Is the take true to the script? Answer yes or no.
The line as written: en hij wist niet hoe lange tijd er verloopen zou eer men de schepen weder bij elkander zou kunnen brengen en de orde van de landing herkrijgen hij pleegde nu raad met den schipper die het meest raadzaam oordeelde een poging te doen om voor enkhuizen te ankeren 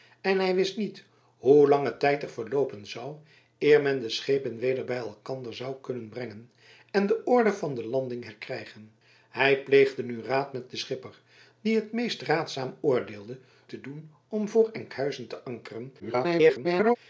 no